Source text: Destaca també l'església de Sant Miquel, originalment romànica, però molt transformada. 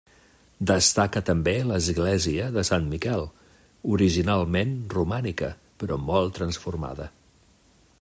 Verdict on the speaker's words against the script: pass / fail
pass